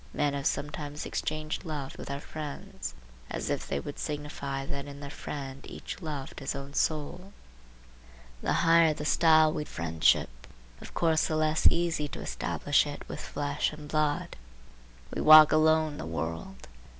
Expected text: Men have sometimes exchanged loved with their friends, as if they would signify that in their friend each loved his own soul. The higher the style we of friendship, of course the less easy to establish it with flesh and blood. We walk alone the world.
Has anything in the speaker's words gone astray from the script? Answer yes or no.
no